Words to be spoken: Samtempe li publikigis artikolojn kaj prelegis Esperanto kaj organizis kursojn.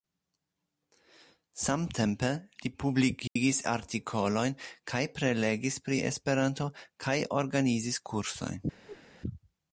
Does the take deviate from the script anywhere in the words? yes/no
yes